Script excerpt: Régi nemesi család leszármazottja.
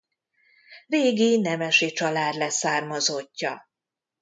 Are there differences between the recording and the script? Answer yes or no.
no